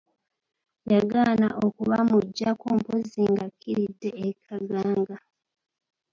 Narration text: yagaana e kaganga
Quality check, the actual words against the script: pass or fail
fail